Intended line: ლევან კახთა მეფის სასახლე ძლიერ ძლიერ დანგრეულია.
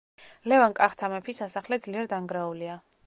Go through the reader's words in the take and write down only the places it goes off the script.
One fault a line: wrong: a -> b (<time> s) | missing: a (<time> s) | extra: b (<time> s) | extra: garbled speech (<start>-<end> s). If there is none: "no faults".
missing: ძლიერ (2.1 s)